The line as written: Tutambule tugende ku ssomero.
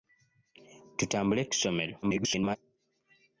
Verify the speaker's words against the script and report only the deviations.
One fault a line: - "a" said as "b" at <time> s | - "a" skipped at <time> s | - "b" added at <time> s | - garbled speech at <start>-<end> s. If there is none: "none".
- "tugende" skipped at 1.4 s
- garbled speech at 2.0-2.6 s